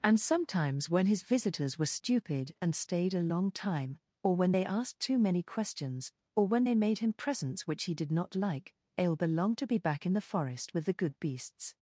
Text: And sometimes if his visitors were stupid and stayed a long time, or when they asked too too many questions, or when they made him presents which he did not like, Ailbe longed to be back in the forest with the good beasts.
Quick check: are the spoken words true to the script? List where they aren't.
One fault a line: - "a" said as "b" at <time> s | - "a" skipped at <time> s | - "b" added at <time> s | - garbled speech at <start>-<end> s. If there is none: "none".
- "if" said as "when" at 0.9 s
- "too" skipped at 5.2 s